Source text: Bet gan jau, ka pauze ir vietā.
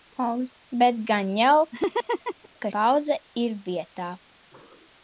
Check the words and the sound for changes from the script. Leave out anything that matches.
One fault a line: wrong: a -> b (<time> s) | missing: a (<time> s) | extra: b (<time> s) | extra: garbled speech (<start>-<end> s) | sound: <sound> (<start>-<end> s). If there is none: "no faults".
sound: laugh (1.7-2.5 s)